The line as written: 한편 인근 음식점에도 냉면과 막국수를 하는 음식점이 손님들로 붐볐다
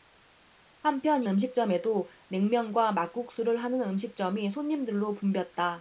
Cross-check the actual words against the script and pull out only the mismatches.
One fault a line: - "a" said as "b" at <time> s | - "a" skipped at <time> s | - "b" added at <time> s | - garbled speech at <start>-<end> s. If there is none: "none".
- "인근" skipped at 1.2 s